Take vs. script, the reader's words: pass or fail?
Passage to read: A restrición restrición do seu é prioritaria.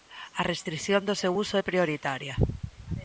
fail